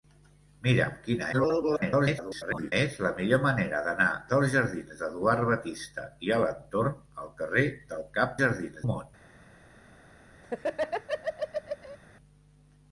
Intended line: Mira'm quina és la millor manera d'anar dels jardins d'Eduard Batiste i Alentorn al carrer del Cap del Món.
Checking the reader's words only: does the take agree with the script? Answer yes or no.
no